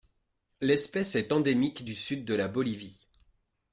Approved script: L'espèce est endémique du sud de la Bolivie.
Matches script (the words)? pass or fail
pass